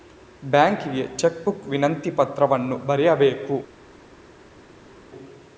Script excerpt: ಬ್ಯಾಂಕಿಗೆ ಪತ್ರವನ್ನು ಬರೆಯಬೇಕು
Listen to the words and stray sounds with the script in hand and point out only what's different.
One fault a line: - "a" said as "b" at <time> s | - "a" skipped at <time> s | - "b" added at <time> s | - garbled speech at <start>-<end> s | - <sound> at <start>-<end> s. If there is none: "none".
- "ಚೆಕ್ ಬುಕ್ ವಿನಂತಿ" added at 1.2 s